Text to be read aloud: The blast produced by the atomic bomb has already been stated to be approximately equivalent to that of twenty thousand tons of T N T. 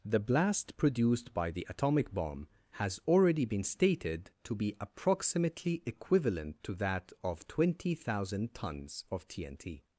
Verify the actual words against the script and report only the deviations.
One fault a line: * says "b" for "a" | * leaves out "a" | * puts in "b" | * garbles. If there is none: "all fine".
all fine